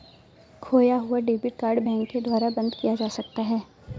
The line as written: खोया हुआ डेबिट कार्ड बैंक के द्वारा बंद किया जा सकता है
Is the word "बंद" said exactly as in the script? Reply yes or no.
yes